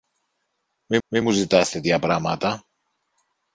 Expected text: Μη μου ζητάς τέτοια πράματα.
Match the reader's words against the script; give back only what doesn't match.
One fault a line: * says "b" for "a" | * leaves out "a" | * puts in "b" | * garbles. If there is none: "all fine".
* puts in "μη"